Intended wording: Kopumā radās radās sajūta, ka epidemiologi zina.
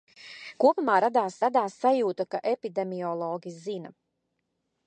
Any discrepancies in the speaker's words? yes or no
no